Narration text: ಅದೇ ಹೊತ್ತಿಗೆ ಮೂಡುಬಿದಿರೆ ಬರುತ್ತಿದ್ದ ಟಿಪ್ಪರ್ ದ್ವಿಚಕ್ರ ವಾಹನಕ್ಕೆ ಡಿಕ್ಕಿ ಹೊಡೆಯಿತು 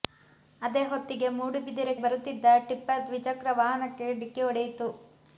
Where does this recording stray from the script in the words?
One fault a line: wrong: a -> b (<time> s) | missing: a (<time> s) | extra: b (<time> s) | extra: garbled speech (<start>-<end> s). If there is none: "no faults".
no faults